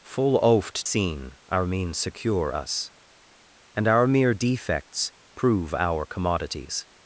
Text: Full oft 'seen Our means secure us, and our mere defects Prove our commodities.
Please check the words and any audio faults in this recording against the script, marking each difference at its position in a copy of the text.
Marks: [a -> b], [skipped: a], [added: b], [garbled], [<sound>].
Full oft 'seen Our means secure us, and our mere defects Prove our commodities.